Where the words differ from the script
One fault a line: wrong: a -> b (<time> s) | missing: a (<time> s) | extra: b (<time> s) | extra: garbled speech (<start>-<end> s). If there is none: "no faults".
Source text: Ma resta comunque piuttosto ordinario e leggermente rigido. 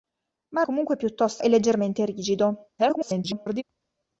missing: resta (0.6 s)
missing: ordinario (1.4 s)
extra: garbled speech (2.8-3.6 s)